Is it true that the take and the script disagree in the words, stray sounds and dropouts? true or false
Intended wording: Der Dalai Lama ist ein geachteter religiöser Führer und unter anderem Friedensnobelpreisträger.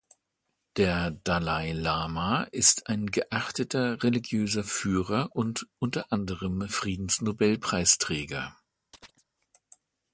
true